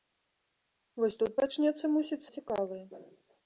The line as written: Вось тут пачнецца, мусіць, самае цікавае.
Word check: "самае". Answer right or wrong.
wrong